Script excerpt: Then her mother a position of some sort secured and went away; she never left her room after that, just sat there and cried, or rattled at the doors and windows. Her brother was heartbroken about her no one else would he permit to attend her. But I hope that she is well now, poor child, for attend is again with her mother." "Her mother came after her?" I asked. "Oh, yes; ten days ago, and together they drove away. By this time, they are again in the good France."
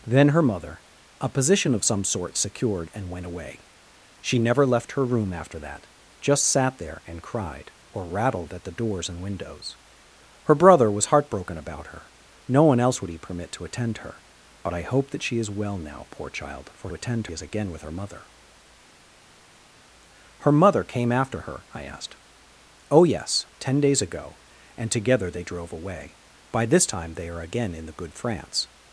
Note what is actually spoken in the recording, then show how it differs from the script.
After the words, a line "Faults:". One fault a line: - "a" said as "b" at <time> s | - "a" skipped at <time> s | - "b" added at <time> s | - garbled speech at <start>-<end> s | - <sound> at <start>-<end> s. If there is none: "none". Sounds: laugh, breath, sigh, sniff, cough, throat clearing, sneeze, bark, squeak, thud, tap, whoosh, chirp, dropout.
Then her mother a position of some sort secured and went away; she never left her room after that, just sat there and cried, or rattled at the doors and windows. Her brother was heartbroken about her no one else would he permit to attend her. But I hope that she is well now, poor child, for attend is again with her mother." "Her mother came after her?" I asked. "Oh, yes; ten days ago, and together they drove away. By this time, they are again in the good France."
Faults:
none